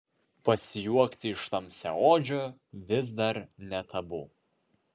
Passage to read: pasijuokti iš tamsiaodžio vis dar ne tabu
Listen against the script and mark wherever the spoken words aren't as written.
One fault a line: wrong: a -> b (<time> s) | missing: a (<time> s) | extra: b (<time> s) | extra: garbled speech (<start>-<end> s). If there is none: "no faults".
no faults